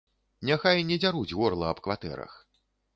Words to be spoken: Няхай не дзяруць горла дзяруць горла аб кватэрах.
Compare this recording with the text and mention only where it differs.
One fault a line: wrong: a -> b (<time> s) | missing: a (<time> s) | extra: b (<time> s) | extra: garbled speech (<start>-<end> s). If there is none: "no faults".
missing: дзяруць горла (1.6 s)